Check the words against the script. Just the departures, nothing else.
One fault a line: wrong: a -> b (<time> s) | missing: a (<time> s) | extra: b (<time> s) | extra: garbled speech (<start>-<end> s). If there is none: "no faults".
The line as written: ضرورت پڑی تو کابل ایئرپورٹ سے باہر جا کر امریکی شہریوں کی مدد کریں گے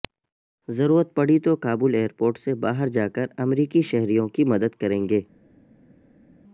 no faults